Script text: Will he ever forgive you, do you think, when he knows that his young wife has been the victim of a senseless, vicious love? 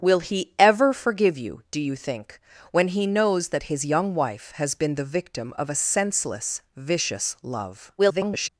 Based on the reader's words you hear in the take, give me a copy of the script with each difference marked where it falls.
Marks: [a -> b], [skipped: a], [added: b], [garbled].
Will he ever forgive you, do you think, when he knows that his young wife has been the victim of a senseless, vicious love? [garbled]